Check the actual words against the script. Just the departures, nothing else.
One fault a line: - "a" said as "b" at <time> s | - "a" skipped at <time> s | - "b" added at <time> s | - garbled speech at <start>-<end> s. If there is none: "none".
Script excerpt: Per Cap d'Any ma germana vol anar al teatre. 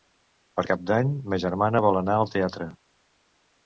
none